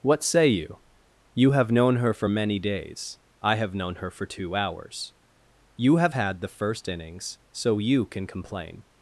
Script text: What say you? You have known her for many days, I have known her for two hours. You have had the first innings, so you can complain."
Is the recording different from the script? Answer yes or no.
no